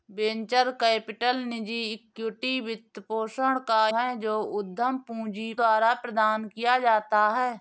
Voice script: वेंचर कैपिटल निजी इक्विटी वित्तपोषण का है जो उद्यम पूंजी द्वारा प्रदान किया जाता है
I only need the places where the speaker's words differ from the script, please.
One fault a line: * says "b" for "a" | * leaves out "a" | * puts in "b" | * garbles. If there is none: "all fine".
all fine